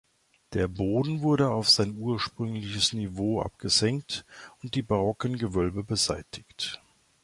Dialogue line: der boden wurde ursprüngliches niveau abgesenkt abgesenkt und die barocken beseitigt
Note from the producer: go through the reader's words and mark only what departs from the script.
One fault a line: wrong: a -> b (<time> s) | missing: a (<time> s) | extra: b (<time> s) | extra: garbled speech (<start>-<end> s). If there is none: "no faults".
extra: auf sein (1.5 s)
missing: abgesenkt (4.2 s)
extra: gewölbe (5.4 s)